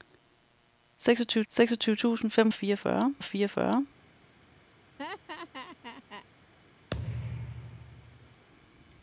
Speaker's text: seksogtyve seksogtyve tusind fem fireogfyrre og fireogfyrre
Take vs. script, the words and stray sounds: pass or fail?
fail